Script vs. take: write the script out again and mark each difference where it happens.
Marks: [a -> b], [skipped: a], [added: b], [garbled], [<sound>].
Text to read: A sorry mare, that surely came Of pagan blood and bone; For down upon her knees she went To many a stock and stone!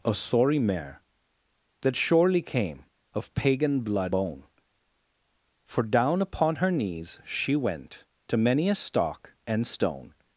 A sorry mare, that surely came Of pagan blood [skipped: and] bone; For down upon her knees she went To many a stock and stone!